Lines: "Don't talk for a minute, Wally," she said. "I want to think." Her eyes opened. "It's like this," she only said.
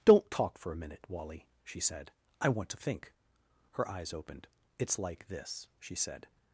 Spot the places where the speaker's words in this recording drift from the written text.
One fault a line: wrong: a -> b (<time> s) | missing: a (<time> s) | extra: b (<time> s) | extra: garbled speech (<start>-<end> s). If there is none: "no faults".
missing: only (5.9 s)